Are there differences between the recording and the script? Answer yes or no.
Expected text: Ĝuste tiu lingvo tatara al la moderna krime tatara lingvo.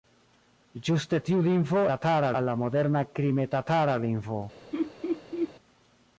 no